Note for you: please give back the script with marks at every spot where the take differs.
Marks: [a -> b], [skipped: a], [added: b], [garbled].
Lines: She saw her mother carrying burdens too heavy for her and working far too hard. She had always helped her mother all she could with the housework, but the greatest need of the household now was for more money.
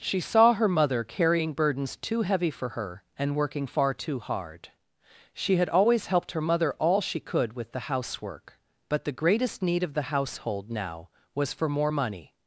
She saw her mother carrying burdens too heavy for her and working far too hard. She had always helped her mother all she could with the housework, but the greatest need of the household now was for more money.